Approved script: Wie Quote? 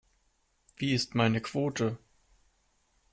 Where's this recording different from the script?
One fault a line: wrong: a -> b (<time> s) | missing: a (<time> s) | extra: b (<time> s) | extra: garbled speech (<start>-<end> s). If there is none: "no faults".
extra: ist meine (0.9 s)